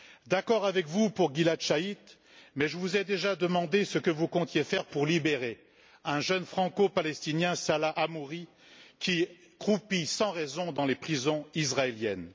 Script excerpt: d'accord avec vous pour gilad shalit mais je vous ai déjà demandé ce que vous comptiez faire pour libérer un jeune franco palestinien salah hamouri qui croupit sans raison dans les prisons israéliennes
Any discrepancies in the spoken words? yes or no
no